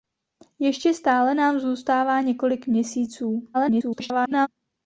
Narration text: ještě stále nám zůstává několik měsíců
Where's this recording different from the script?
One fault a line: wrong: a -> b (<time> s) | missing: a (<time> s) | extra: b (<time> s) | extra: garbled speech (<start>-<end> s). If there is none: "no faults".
extra: garbled speech (3.5-4.5 s)